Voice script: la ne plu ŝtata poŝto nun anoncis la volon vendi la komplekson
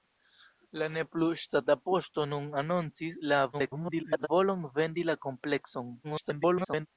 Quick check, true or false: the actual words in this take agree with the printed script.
false